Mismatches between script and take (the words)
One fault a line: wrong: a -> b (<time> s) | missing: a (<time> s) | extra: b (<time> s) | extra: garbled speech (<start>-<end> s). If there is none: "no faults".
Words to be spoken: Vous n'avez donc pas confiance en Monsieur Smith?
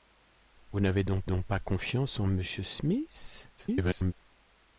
extra: donc (1.2 s)
extra: garbled speech (3.6-4.1 s)